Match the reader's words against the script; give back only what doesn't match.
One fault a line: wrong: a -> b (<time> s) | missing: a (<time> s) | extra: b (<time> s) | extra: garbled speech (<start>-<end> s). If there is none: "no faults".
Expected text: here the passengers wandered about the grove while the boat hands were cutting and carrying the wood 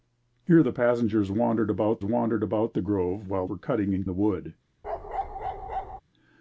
extra: wandered about (2.0 s)
missing: the boat hands (3.5 s)
missing: carrying (4.0 s)